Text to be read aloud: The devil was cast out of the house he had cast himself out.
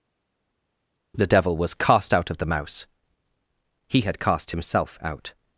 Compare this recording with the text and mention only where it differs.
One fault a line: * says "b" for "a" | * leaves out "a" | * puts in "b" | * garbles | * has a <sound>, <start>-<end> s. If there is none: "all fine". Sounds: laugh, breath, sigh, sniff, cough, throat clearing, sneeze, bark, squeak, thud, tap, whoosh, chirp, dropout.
* says "mouse" for "house"